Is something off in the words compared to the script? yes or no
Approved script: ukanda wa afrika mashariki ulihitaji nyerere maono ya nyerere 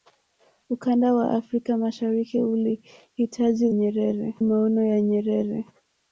no